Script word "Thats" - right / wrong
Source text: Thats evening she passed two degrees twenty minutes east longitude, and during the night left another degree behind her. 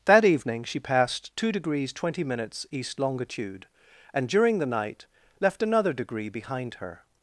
wrong